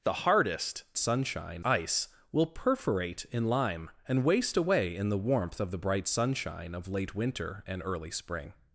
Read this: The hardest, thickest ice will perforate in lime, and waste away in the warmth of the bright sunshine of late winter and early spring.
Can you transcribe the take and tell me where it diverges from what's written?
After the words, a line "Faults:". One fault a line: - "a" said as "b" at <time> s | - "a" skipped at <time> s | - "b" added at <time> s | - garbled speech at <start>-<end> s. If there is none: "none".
The hardest, sunshine ice will perforate in lime, and waste away in the warmth of the bright sunshine of late winter and early spring.
Faults:
- "thickest" said as "sunshine" at 1.0 s